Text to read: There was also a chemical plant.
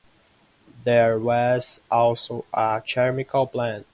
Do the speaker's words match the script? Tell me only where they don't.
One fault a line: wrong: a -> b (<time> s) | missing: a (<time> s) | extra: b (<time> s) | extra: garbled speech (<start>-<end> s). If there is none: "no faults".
no faults